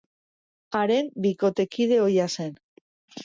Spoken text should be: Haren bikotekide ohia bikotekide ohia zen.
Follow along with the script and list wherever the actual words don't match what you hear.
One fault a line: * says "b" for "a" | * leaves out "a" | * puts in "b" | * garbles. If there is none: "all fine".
* leaves out "bikotekide ohia"